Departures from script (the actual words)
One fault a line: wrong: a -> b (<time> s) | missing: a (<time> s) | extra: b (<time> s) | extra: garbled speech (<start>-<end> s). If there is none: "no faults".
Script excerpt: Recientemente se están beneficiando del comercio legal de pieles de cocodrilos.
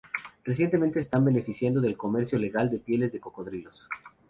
missing: se (1.0 s)